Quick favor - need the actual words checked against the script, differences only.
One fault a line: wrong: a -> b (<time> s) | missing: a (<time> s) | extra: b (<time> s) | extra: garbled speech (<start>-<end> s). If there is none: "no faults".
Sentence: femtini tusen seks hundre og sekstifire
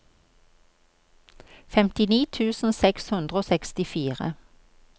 no faults